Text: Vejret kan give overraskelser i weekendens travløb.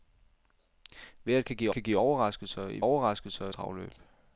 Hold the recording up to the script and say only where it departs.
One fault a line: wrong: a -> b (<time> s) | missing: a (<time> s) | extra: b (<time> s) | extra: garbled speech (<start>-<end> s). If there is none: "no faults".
extra: kan give (1.7 s)
wrong: weekendens -> overraskelser (2.8 s)